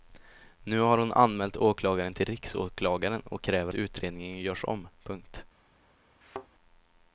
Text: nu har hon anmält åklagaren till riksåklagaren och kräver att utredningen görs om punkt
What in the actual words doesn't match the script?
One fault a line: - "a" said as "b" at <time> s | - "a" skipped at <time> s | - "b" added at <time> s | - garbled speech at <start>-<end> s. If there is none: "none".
- "att" skipped at 3.7 s